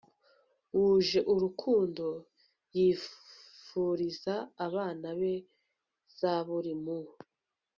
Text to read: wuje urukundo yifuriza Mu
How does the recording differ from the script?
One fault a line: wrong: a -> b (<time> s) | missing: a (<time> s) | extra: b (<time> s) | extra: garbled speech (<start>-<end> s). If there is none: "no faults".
extra: abana be Zaburi (4.7 s)